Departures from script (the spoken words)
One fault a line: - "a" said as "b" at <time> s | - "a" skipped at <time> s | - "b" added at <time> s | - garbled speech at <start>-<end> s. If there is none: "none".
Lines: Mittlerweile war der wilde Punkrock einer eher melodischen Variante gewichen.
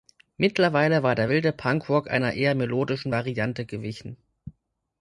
none